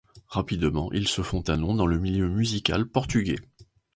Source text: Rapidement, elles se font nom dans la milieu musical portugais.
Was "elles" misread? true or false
true